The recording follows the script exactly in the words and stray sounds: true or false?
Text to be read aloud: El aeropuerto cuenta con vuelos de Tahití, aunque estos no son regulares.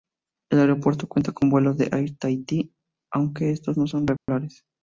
false